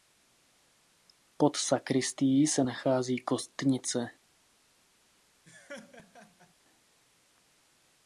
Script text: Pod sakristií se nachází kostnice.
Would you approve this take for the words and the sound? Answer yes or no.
no